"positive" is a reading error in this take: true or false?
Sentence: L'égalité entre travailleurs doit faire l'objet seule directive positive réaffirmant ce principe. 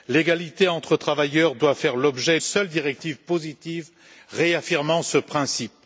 false